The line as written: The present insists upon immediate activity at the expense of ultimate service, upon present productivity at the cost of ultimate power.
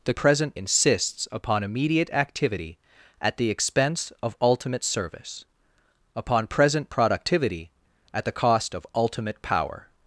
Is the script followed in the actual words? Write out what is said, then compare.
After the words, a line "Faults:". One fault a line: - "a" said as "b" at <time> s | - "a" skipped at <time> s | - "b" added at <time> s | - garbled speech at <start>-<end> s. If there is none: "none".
The present insists upon immediate activity at the expense of ultimate service, upon present productivity at the cost of ultimate power.
Faults:
none